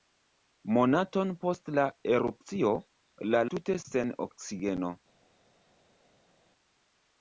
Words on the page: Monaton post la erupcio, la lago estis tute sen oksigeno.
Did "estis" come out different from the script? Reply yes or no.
yes